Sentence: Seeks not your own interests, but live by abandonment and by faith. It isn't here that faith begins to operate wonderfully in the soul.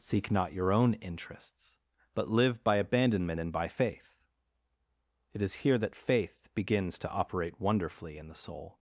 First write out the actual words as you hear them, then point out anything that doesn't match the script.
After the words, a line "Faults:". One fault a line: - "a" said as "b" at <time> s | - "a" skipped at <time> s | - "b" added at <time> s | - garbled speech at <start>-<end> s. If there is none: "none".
Seek not your own interests, but live by abandonment and by faith. It is here that faith begins to operate wonderfully in the soul.
Faults:
- "Seeks" said as "Seek" at 0.0 s
- "isn't" said as "is" at 5.4 s